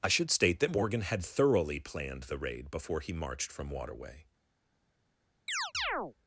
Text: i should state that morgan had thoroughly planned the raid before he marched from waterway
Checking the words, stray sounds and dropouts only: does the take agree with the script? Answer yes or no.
no